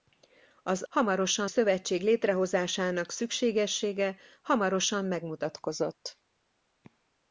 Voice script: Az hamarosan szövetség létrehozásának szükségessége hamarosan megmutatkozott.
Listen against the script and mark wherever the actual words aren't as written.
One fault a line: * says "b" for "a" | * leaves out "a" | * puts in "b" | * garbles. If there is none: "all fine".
all fine